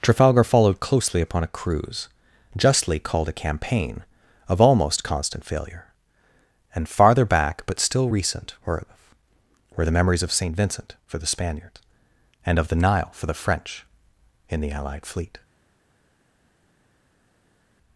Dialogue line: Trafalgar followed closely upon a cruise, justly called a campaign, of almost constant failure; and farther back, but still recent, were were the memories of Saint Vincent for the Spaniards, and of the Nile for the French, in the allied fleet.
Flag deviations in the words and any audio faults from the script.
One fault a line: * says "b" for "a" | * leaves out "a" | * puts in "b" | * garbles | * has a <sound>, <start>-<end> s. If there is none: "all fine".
all fine